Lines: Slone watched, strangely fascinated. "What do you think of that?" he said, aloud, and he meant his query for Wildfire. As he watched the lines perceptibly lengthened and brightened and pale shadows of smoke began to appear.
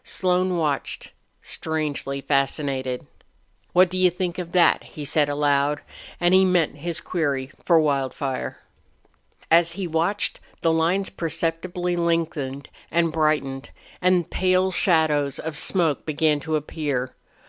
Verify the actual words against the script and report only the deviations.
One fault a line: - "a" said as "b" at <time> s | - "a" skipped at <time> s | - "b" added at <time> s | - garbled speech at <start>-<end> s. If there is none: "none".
none